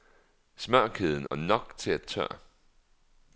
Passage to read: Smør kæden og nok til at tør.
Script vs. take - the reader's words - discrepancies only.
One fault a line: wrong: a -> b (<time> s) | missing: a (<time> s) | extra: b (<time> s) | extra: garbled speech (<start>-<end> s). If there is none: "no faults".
no faults